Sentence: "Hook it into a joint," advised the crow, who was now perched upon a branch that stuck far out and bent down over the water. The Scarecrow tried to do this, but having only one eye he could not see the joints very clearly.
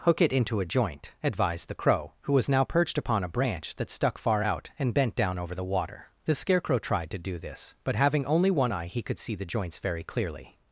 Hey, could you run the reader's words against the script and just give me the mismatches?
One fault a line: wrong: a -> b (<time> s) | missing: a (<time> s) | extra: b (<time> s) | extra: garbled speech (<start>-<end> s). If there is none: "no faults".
missing: not (9.2 s)